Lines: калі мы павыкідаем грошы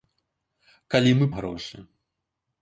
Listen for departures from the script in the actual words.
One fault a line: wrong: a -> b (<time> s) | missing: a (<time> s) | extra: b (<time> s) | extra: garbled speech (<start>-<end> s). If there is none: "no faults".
missing: павыкідаем (1.2 s)